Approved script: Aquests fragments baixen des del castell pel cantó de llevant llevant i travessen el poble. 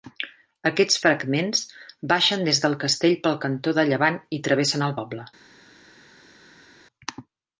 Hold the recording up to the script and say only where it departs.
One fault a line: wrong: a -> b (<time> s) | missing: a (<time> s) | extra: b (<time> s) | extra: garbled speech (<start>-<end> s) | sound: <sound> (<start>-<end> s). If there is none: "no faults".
missing: llevant (4.2 s)